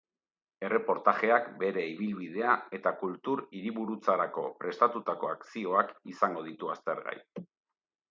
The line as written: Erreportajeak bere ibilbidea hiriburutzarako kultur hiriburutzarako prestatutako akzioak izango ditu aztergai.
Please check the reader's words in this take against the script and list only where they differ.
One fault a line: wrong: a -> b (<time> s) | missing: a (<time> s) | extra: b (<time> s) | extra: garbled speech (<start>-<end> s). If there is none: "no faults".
wrong: hiriburutzarako -> eta (2.8 s)